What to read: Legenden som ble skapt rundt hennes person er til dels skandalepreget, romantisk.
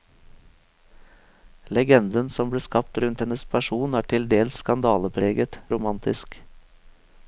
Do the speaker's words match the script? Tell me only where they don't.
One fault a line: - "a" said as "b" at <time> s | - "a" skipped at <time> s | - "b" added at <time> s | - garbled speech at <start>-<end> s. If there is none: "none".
none